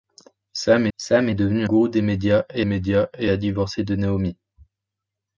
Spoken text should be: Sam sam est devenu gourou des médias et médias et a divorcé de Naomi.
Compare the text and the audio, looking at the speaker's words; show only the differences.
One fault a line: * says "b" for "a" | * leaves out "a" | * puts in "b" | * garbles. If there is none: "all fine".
all fine